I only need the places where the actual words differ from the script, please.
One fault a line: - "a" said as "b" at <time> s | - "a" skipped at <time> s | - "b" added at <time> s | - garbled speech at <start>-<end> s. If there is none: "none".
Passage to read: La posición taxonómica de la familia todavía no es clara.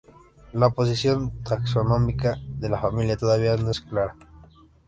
none